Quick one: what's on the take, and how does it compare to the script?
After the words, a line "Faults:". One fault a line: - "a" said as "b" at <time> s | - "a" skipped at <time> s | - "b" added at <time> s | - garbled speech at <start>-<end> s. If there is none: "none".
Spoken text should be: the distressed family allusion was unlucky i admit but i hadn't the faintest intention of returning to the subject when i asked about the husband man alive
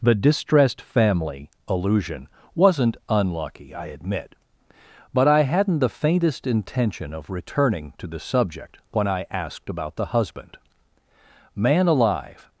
the distressed family allusion wasn't unlucky i admit but i hadn't the faintest intention of returning to the subject when i asked about the husband man alive
Faults:
- "was" said as "wasn't" at 2.5 s